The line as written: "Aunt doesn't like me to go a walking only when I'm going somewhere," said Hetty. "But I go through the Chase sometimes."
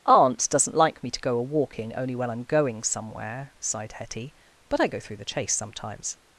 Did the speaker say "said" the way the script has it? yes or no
no